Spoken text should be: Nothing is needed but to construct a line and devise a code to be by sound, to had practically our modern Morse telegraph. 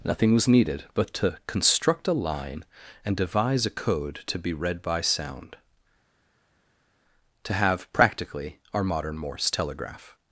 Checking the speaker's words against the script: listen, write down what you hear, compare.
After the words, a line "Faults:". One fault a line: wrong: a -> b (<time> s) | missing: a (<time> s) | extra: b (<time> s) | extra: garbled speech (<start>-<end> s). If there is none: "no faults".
Nothing was needed but to construct a line and devise a code to be read by sound, to have practically our modern Morse telegraph.
Faults:
wrong: is -> was (0.3 s)
extra: read (4.5 s)
wrong: had -> have (7.5 s)